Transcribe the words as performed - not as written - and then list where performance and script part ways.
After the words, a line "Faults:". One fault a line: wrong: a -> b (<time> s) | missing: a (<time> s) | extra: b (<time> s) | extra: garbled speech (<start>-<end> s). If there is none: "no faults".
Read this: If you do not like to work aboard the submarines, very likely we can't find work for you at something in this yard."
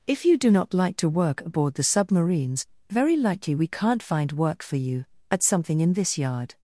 If you do not like to work aboard the submarines, very likely we can't find work for you at something in this yard."
Faults:
no faults